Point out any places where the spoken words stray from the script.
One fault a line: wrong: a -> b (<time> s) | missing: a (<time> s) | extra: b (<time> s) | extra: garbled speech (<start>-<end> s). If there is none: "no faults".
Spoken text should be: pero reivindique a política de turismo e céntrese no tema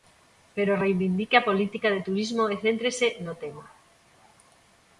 no faults